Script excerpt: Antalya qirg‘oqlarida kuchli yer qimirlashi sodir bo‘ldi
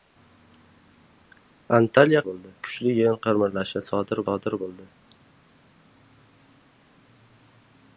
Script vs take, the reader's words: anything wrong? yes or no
yes